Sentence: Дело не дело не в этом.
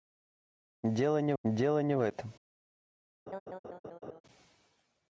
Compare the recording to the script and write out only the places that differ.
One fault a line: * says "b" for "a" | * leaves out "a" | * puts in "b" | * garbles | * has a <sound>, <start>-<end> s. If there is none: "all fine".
* has a laugh, 3.3-4.2 s